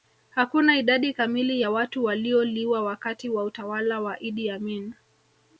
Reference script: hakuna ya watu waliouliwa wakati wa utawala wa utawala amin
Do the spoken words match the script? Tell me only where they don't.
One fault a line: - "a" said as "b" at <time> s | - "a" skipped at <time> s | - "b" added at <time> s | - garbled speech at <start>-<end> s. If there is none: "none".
- "idadi kamili" added at 0.8 s
- "utawala" said as "idi" at 4.2 s